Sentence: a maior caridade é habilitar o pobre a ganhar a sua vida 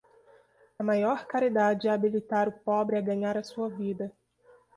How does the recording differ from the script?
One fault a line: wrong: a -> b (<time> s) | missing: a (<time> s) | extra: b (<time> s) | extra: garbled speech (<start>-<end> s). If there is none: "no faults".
no faults